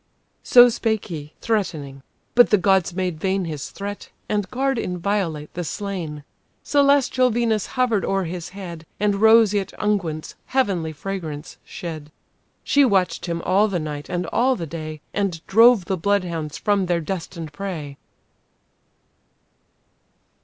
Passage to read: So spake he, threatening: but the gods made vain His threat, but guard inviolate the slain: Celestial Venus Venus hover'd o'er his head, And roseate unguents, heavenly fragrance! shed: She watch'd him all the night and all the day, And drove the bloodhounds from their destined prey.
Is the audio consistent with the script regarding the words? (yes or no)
no